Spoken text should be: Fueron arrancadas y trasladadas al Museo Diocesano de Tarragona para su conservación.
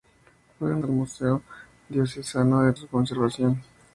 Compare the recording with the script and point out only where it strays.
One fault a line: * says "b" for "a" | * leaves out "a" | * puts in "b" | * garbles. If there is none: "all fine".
* leaves out "arrancadas y trasladadas"
* leaves out "Tarragona para"